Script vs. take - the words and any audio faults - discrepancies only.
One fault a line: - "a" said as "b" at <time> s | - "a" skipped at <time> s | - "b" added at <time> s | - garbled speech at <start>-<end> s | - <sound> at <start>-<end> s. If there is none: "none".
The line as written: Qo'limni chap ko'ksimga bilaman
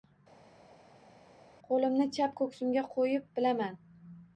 - "qo'yib" added at 3.0 s